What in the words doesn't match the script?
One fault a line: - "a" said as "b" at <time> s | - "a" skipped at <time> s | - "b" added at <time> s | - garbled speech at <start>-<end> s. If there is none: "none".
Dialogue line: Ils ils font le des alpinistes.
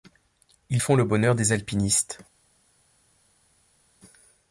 - "ils" skipped at 0.8 s
- "bonheur" added at 1.1 s